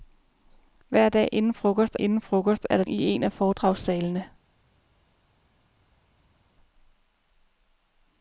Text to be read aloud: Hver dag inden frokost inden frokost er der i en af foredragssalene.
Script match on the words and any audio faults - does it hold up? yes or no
yes